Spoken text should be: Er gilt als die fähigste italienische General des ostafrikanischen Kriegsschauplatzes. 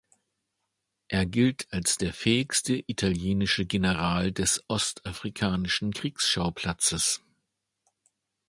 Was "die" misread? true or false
true